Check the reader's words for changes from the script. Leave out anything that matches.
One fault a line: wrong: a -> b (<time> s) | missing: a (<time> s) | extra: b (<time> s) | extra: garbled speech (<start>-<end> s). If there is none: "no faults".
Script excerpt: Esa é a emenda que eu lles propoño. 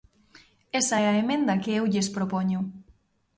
no faults